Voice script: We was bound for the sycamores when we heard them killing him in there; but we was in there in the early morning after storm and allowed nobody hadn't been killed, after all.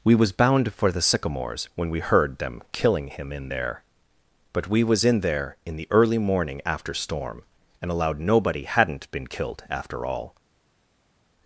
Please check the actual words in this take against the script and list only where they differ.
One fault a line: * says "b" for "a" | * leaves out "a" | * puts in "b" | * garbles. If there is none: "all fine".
all fine